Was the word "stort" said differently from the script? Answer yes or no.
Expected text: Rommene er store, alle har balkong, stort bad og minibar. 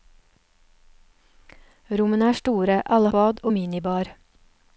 yes